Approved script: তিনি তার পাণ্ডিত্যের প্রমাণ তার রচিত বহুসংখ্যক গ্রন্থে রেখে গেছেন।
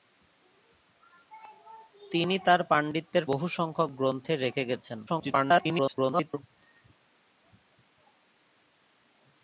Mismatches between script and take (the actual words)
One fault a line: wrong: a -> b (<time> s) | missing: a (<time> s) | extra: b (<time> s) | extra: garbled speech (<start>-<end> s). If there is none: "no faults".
missing: প্রমাণ তার রচিত (3.3 s)
extra: garbled speech (5.1-6.4 s)